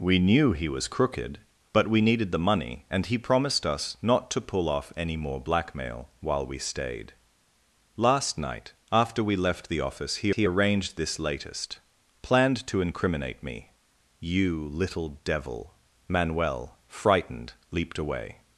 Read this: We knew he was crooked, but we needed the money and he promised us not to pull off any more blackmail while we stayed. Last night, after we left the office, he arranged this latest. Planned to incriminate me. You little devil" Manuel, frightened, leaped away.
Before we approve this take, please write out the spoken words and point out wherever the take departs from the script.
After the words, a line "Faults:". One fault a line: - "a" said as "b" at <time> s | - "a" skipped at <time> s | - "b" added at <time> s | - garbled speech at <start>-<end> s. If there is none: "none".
We knew he was crooked, but we needed the money and he promised us not to pull off any more blackmail while we stayed. Last night, after we left the office, he he arranged this latest. Planned to incriminate me. You little devil" Manuel, frightened, leaped away.
Faults:
- "he" added at 10.3 s